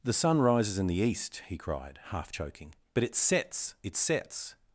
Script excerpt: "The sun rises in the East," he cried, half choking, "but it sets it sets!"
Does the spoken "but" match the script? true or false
true